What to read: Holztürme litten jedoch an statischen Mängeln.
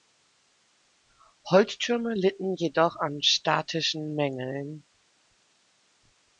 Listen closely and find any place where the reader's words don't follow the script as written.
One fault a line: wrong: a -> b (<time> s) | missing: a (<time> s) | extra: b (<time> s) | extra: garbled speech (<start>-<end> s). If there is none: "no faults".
no faults